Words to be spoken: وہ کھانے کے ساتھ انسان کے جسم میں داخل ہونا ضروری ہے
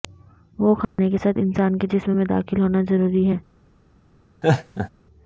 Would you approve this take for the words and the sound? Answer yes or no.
no